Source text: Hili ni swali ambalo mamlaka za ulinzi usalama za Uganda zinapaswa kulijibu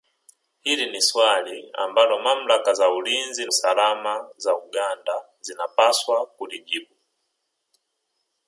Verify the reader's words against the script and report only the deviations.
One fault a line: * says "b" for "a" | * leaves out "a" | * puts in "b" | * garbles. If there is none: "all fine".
all fine